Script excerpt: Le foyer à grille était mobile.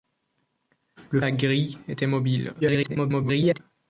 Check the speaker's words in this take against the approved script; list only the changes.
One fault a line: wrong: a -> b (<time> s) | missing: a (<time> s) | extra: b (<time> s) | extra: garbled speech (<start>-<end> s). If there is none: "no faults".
missing: foyer (1.2 s)
extra: garbled speech (2.6-3.6 s)